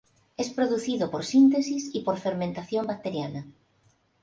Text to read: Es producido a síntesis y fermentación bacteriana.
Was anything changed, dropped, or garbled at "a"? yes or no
yes